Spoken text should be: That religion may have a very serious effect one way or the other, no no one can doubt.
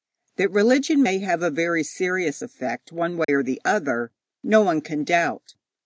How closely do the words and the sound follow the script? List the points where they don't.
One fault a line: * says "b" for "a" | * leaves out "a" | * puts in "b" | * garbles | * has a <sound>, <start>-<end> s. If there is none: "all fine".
* has a dropout, 3.2-3.3 s
* leaves out "no"